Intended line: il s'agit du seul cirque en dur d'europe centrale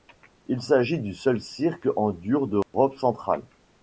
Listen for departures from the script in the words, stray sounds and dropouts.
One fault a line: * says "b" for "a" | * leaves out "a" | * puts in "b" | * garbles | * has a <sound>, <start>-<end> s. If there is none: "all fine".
* has a dropout, 2.6-2.7 s